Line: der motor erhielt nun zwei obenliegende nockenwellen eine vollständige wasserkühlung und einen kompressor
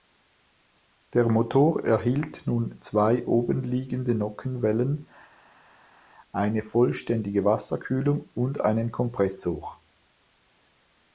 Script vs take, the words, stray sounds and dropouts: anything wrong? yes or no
no